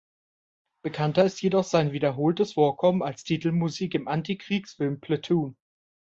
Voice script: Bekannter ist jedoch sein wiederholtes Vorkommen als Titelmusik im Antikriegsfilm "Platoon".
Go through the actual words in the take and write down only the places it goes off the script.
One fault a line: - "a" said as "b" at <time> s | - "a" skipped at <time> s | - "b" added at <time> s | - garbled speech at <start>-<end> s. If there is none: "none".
none